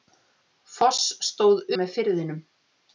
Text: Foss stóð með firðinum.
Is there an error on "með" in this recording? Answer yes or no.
no